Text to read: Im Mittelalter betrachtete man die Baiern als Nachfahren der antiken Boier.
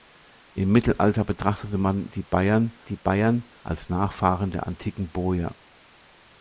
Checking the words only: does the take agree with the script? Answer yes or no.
no